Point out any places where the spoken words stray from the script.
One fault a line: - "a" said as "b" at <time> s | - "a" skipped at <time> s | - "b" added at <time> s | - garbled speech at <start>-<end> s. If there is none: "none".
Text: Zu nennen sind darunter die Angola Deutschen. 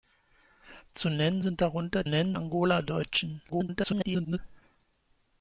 - "die" said as "nennen" at 2.0 s
- garbled speech at 3.5-4.4 s